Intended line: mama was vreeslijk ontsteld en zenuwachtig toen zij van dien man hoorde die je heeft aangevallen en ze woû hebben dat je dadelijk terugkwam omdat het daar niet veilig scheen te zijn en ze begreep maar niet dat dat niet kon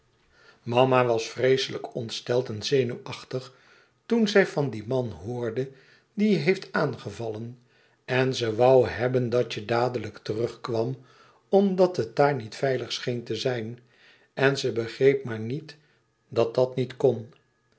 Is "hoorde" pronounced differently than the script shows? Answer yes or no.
no